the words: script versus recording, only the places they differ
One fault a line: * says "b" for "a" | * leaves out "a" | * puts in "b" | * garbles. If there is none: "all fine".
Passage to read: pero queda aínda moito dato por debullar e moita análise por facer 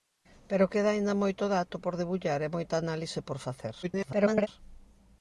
* garbles